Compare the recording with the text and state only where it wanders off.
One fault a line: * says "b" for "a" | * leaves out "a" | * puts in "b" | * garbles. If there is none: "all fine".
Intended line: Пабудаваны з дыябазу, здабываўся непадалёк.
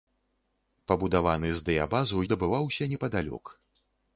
all fine